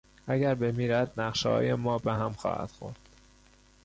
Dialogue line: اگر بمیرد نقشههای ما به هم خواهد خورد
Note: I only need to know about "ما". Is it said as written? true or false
true